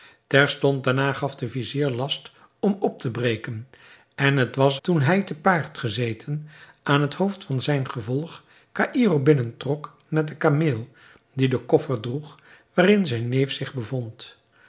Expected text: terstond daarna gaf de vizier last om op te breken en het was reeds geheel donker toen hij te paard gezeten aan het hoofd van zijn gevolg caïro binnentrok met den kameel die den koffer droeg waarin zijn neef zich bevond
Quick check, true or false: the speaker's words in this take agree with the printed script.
false